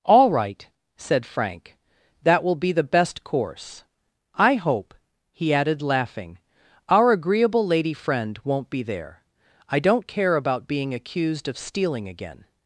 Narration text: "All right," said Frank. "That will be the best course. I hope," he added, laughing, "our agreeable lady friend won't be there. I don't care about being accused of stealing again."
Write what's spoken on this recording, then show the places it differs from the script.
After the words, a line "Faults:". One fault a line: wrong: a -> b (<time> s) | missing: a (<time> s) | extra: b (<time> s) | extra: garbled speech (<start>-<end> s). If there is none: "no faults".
"All right," said Frank. "That will be the best course. I hope," he added, laughing, "our agreeable lady friend won't be there. I don't care about being accused of stealing again."
Faults:
no faults